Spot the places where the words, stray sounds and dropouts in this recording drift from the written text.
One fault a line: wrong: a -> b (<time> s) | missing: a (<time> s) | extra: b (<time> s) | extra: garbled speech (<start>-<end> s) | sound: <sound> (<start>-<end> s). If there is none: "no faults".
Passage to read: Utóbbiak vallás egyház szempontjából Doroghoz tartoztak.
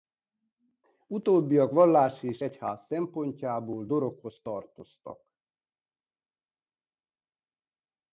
extra: és (2.2 s)